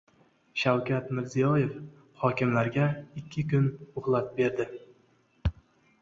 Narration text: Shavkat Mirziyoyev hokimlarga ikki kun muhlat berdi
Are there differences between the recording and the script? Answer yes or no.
no